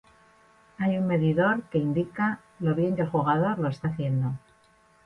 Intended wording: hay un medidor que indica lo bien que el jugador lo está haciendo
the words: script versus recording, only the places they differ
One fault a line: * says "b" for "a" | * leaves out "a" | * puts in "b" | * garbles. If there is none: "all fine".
all fine